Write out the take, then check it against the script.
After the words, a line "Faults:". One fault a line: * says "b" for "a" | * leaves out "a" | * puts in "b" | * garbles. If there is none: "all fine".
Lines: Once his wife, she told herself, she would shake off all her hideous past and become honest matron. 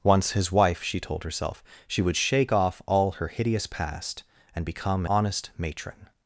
Once his wife, she told herself, she would shake off all her hideous past and become honest matron.
Faults:
all fine